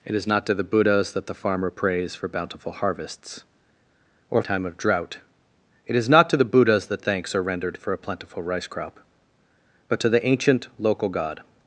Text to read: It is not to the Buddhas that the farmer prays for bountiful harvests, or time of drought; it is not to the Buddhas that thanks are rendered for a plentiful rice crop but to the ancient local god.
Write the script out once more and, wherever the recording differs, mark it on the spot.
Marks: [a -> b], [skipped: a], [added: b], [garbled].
It is not to the Buddhas that the farmer prays for bountiful harvests, or time of drought; it is not to the Buddhas that thanks are rendered for a plentiful rice crop but to the ancient local god.